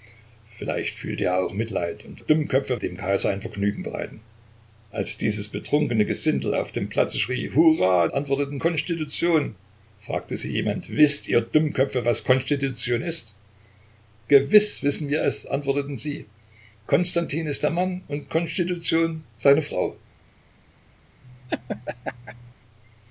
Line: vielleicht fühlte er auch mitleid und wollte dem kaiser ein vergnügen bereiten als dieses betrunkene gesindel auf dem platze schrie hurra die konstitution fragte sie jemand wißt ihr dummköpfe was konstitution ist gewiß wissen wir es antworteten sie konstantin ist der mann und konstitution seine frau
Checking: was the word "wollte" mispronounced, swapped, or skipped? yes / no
yes